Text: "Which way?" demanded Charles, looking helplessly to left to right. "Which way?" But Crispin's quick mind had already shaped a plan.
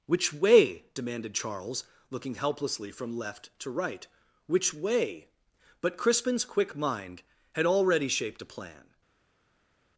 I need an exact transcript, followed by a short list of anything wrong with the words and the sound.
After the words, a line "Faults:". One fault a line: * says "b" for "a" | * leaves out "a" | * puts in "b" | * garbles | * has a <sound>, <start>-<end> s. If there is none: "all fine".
"Which way?" demanded Charles, looking helplessly from left to right. "Which way?" But Crispin's quick mind had already shaped a plan.
Faults:
* says "from" for "to"